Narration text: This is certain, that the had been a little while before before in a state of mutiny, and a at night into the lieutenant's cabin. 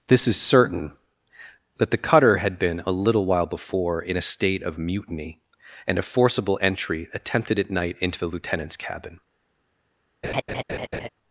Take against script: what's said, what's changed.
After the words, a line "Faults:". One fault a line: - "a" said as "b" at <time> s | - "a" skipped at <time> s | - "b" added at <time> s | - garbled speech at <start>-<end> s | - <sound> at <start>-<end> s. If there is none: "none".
This is certain, that the cutter had been a little while before in a state of mutiny, and a forcible entry attempted at night into the lieutenant's cabin.
Faults:
- "cutter" added at 2.0 s
- "before" skipped at 4.0 s
- "forcible entry attempted" added at 6.0 s
- laugh at 10.2-11.1 s